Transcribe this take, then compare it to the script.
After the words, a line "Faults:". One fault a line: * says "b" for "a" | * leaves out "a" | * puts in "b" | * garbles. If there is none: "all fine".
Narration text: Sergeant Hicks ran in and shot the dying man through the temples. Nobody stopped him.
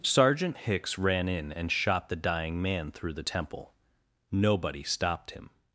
Sergeant Hicks ran in and shot the dying man through the temple. Nobody stopped him.
Faults:
* says "temple" for "temples"